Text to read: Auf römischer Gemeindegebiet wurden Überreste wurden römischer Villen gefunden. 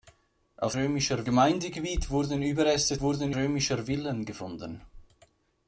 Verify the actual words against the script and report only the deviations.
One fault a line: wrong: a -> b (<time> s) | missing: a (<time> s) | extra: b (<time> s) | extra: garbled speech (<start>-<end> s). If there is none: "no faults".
no faults